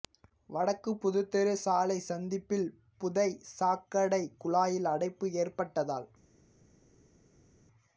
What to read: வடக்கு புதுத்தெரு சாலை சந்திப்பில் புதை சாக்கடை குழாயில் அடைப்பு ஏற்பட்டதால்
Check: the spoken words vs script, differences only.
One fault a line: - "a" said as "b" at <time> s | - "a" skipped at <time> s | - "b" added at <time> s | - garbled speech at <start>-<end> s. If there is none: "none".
none